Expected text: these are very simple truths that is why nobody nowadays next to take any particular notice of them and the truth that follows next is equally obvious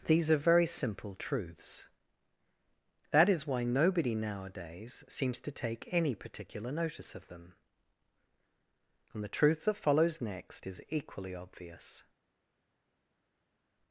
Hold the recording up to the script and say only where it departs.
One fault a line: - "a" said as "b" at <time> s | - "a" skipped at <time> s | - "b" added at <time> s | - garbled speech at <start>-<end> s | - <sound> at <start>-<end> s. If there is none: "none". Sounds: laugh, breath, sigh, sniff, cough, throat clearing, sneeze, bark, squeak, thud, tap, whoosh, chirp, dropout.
- "next" said as "seems" at 5.1 s